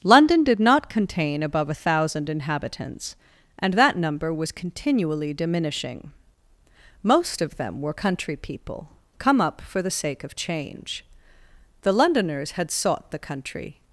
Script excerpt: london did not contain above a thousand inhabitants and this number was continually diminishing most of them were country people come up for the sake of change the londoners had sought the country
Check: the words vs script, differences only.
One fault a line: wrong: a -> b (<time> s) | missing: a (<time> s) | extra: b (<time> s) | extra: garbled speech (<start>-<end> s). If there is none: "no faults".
wrong: this -> that (3.8 s)